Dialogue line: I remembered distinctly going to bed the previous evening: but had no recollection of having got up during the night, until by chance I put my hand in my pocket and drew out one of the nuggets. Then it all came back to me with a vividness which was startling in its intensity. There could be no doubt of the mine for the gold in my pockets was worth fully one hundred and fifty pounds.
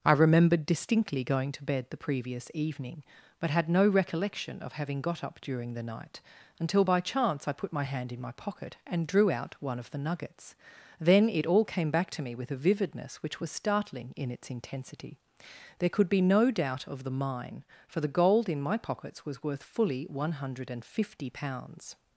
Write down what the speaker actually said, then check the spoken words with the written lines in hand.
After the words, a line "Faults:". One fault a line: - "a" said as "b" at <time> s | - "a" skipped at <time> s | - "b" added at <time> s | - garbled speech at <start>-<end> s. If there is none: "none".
I remembered distinctly going to bed the previous evening: but had no recollection of having got up during the night, until by chance I put my hand in my pocket and drew out one of the nuggets. Then it all came back to me with a vividness which was startling in its intensity. There could be no doubt of the mine for the gold in my pockets was worth fully one hundred and fifty pounds.
Faults:
none